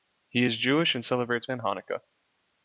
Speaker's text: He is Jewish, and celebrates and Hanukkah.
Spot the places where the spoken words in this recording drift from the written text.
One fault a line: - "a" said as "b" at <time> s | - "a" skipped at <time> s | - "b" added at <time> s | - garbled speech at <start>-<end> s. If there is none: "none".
none